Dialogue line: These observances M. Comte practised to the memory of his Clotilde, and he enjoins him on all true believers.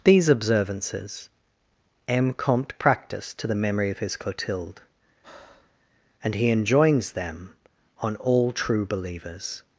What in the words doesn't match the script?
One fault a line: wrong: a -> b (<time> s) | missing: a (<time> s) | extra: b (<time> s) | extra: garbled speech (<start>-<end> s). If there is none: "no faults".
wrong: him -> them (7.1 s)